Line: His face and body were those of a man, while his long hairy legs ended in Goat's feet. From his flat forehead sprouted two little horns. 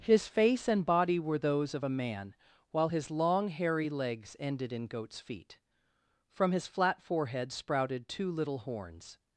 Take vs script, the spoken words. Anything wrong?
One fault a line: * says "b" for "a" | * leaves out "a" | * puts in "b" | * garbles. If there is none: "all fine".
all fine